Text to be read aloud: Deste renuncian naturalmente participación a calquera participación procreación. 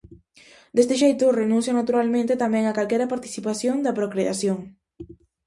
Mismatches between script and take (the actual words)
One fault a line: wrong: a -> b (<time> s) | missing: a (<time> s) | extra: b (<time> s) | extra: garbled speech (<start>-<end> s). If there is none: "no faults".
extra: xeito (1.0 s)
wrong: participación -> tamén (2.4 s)
extra: da (3.8 s)